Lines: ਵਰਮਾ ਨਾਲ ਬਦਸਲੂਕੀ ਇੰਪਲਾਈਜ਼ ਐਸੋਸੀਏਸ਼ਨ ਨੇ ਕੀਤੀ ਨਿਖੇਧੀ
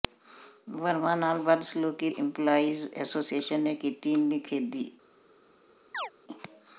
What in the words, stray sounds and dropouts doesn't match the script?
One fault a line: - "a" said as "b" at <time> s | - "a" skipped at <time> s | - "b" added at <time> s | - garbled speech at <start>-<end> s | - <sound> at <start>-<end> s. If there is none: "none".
- chirp at 5.9-6.1 s